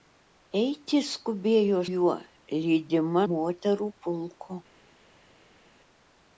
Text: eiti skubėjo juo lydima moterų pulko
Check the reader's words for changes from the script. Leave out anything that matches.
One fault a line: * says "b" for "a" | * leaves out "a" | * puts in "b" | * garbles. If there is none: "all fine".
all fine